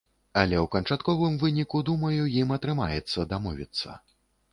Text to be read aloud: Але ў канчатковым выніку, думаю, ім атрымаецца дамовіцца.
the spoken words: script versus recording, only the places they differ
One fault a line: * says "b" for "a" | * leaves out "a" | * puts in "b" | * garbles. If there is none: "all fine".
all fine